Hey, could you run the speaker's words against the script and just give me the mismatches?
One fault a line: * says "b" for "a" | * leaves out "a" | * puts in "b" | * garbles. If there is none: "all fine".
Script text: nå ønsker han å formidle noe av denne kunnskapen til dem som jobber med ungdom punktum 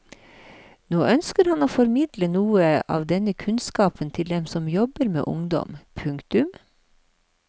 all fine